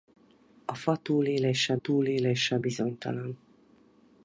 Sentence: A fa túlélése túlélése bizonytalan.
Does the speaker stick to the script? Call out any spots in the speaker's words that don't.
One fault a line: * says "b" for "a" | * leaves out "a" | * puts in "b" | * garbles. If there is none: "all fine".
all fine